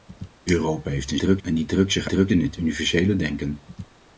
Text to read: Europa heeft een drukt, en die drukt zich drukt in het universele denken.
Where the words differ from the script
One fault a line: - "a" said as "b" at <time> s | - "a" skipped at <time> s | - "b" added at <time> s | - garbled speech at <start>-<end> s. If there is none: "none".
none